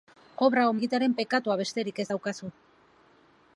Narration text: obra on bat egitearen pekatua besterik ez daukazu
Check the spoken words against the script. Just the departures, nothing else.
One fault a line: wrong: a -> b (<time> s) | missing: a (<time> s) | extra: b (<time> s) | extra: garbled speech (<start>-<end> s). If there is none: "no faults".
missing: bat (0.8 s)